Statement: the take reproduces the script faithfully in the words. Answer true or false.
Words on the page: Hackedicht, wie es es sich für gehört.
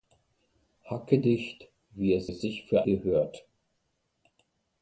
true